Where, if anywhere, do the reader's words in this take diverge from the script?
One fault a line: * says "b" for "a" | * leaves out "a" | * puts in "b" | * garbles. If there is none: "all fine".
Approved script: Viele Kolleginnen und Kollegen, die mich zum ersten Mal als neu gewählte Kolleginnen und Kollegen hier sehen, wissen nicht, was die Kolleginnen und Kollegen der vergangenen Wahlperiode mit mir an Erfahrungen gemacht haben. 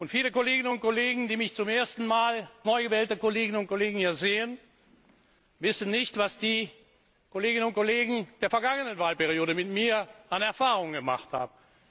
* leaves out "als"